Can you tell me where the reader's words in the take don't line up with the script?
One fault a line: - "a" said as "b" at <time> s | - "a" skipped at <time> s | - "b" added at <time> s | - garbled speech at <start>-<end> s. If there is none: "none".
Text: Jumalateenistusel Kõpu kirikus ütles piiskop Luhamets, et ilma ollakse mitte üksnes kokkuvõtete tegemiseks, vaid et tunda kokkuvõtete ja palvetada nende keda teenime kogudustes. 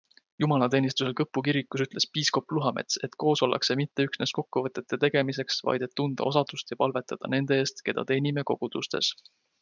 - "ilma" said as "koos" at 3.2 s
- "kokkuvõtete" said as "osadust" at 6.3 s
- "eest" added at 7.6 s